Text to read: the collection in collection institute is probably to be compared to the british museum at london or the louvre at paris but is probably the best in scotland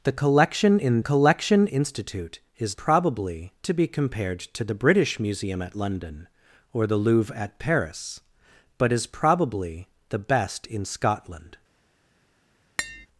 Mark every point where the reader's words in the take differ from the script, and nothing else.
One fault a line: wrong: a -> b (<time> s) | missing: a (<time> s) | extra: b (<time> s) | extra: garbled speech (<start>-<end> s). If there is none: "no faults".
no faults